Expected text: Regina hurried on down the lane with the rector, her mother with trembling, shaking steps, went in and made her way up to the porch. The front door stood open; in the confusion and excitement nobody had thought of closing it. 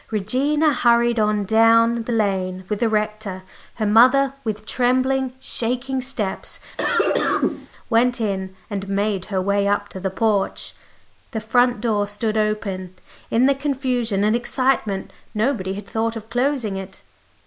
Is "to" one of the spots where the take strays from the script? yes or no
no